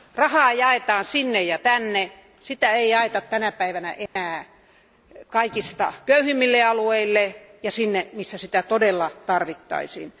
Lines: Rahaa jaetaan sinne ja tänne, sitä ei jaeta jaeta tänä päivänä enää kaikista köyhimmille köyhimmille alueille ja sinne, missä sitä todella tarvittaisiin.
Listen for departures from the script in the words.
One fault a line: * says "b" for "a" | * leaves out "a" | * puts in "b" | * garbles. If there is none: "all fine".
* leaves out "jaeta"
* leaves out "köyhimmille"